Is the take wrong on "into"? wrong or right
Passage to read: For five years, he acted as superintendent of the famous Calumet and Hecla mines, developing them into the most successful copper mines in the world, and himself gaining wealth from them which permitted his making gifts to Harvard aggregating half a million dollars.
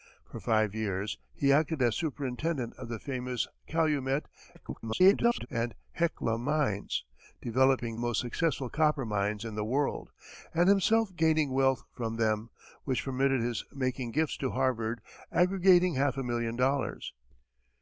wrong